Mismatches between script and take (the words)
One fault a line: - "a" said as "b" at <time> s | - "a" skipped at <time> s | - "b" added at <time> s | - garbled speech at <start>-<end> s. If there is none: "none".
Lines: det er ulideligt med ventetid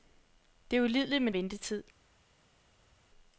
none